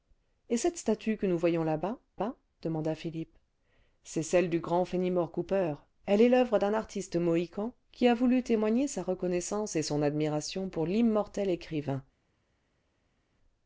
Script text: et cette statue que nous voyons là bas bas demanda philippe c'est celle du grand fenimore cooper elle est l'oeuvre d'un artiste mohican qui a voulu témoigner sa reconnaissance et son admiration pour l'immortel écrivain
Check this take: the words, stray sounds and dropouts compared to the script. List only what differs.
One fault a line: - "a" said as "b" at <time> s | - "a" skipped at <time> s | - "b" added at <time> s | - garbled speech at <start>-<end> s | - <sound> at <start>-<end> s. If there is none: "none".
none